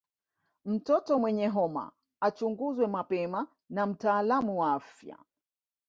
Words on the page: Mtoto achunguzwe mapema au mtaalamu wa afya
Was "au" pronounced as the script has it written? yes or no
no